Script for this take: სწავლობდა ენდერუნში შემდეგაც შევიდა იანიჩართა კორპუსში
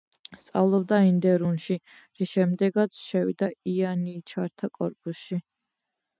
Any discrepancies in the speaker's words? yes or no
yes